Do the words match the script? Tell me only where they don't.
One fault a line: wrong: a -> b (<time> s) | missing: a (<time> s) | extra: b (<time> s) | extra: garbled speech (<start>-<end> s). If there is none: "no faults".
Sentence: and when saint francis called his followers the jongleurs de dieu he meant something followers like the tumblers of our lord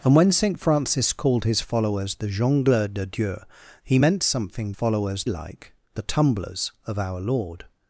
no faults